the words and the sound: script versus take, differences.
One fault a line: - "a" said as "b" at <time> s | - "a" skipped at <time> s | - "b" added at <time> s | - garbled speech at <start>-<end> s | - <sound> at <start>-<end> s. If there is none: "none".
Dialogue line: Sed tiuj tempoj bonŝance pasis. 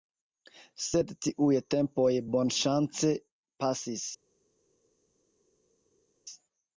none